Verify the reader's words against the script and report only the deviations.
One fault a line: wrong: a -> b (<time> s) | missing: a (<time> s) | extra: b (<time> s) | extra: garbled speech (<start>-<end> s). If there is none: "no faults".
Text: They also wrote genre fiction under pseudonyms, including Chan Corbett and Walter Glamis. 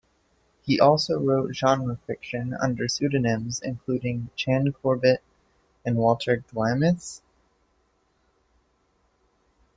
wrong: They -> He (0.6 s)